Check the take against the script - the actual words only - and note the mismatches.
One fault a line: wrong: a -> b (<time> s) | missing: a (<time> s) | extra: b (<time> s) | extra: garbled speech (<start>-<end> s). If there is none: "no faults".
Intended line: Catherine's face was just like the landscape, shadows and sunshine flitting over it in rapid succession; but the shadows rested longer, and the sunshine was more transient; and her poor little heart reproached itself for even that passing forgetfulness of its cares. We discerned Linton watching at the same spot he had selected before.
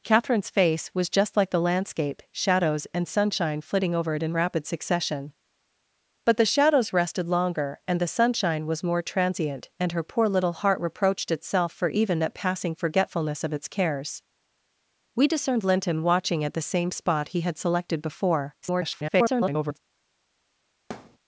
extra: garbled speech (18.6-19.8 s)